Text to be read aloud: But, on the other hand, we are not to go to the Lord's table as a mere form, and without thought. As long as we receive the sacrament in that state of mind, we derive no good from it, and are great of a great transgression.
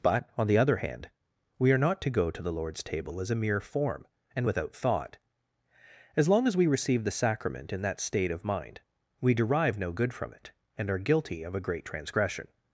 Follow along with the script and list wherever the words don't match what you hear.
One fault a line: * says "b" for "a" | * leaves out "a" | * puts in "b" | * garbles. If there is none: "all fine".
* says "guilty" for "great"